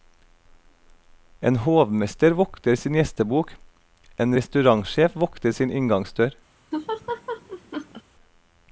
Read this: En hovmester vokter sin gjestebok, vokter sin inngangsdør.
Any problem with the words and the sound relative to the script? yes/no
yes